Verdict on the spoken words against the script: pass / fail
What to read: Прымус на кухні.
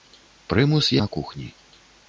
pass